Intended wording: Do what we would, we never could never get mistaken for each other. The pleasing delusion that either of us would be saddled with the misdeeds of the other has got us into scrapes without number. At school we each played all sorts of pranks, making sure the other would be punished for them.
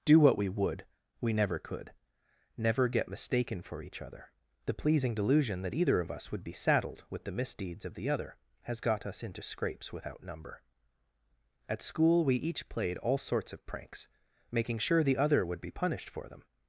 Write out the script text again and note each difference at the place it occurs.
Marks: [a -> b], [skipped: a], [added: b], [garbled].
Do what we would, we never could never get mistaken for each other. The pleasing delusion that either of us would be saddled with the misdeeds of the other has got us into scrapes without number. At school we each played all sorts of pranks, making sure the other would be punished for them.